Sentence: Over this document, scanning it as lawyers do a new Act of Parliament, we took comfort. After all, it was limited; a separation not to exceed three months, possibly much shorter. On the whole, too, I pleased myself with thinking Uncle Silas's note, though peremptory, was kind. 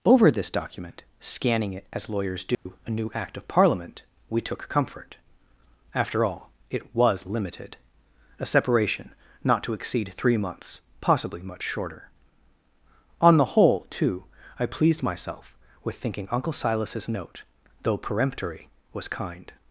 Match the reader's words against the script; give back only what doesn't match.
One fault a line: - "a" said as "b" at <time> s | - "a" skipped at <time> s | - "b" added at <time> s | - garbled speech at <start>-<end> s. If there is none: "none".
none